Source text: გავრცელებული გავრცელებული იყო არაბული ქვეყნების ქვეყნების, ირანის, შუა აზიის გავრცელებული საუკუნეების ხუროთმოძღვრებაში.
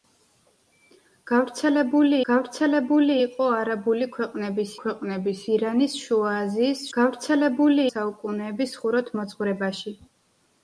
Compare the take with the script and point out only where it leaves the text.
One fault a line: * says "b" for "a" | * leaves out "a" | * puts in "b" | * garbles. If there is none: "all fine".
all fine